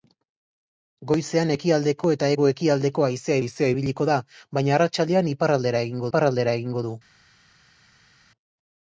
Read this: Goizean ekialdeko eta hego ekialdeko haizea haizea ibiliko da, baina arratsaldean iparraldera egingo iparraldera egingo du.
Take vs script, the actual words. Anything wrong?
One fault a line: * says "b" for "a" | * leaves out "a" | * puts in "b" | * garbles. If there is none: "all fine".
all fine